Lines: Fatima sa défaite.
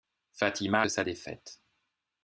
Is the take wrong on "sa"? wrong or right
right